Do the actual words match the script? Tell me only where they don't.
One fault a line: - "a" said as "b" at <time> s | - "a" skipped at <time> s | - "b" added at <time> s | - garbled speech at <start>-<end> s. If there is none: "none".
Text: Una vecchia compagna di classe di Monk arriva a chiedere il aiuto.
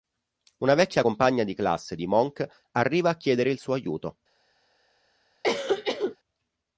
- "suo" added at 3.6 s